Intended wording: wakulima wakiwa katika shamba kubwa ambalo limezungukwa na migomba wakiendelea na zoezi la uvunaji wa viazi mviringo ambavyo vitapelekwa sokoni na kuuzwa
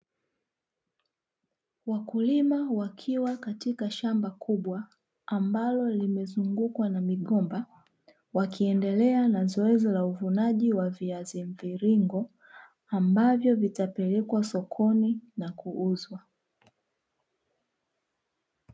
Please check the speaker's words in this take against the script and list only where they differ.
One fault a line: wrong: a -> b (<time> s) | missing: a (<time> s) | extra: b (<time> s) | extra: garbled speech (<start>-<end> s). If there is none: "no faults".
no faults